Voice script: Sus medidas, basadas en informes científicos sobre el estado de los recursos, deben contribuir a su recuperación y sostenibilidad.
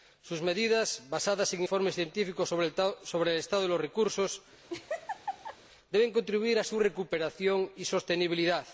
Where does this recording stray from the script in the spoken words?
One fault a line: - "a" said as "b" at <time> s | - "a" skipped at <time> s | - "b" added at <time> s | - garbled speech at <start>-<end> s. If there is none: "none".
none